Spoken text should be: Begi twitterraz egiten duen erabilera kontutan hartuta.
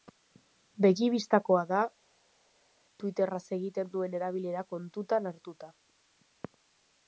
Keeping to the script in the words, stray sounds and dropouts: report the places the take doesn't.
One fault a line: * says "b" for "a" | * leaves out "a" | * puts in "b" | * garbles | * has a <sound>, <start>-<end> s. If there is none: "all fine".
* puts in "bistakoa da"